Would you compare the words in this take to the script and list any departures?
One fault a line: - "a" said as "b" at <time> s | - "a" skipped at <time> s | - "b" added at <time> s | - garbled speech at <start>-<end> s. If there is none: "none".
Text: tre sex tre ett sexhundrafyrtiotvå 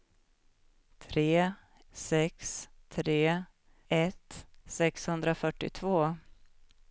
none